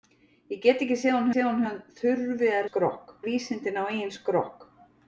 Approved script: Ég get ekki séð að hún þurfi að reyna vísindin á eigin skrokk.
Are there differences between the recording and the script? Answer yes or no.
yes